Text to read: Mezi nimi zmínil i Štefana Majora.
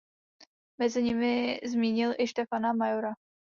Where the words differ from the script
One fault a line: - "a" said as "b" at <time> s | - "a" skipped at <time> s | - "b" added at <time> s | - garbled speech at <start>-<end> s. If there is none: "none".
none